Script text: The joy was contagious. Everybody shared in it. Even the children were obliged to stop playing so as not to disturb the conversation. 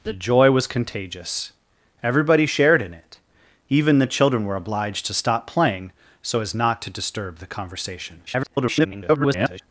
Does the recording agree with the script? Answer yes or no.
no